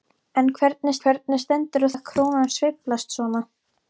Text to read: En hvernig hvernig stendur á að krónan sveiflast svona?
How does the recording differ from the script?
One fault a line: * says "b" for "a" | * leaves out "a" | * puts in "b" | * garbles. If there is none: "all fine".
all fine